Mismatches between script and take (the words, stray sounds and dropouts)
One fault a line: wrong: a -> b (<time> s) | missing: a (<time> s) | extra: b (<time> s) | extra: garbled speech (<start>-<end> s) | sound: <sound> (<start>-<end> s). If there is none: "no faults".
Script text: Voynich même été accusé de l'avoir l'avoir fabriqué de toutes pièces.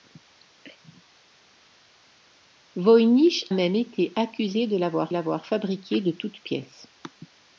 no faults